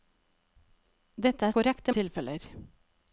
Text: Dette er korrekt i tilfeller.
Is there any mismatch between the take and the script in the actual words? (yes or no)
no